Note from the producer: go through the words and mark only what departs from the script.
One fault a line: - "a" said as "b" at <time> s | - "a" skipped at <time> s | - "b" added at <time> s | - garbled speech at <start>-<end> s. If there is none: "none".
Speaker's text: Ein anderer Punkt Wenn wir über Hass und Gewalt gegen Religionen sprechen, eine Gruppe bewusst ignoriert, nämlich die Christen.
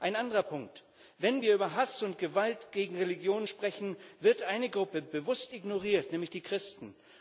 - "wird" added at 4.2 s